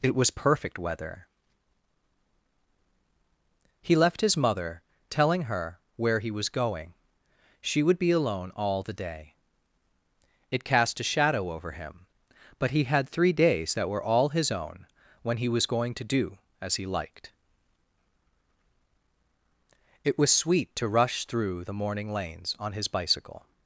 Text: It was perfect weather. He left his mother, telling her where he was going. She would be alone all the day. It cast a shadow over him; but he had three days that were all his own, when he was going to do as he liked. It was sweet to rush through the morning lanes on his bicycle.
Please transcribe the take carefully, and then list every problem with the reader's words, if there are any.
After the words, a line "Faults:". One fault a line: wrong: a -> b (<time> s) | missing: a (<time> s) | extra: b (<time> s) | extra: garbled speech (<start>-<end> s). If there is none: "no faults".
It was perfect weather. He left his mother, telling her where he was going. She would be alone all the day. It cast a shadow over him; but he had three days that were all his own, when he was going to do as he liked. It was sweet to rush through the morning lanes on his bicycle.
Faults:
no faults